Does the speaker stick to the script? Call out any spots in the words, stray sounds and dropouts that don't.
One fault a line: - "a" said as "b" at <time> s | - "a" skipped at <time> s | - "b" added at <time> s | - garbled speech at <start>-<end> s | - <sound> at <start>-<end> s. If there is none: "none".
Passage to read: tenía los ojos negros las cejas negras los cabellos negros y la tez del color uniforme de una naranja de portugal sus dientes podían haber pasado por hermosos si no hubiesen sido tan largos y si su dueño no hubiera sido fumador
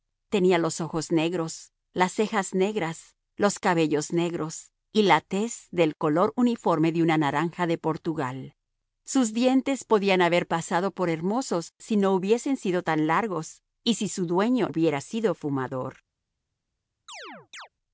- "no" skipped at 14.7 s
- chirp at 17.1-17.7 s